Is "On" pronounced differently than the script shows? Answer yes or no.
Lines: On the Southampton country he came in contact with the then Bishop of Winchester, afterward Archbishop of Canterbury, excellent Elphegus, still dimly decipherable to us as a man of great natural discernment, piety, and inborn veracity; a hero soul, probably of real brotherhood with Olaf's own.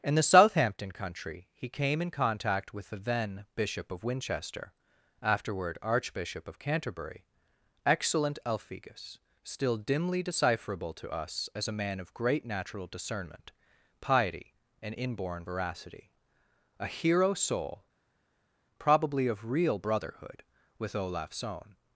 yes